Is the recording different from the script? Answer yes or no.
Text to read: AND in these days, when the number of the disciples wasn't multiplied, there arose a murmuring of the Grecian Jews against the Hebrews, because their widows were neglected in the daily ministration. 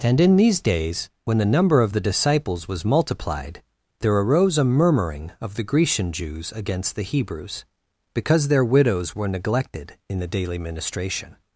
yes